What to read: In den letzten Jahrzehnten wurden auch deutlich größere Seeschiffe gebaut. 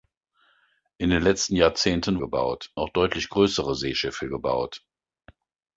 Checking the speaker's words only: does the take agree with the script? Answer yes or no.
no